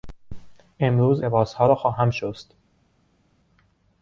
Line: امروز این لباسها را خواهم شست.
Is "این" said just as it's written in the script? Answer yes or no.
no